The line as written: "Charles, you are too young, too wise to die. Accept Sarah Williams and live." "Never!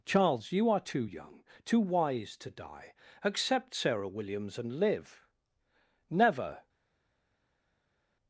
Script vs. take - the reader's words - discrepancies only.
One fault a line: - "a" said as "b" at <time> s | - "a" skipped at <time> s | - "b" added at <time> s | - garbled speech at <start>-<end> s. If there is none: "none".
none